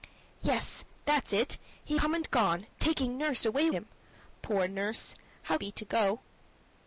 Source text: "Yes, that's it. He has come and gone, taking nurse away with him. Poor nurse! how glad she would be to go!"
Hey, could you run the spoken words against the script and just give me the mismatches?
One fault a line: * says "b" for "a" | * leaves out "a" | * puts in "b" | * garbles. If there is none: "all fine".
* leaves out "has"
* leaves out "with"
* leaves out "glad she would"